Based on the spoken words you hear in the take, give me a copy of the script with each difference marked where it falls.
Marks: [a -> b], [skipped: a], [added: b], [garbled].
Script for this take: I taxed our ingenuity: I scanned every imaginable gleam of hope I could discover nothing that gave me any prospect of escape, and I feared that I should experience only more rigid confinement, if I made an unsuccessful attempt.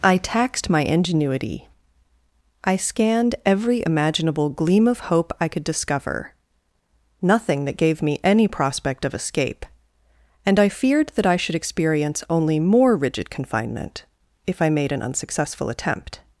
I taxed [our -> my] ingenuity: I scanned every imaginable gleam of hope I could discover nothing that gave me any prospect of escape, and I feared that I should experience only more rigid confinement, if I made an unsuccessful attempt.